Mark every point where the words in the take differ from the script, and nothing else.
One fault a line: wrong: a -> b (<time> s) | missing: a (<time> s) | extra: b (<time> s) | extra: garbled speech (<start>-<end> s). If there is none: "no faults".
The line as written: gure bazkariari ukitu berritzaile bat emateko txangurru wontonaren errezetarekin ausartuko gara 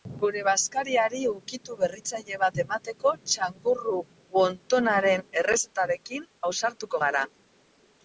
no faults